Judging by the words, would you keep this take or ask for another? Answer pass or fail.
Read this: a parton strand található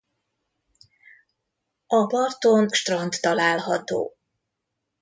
pass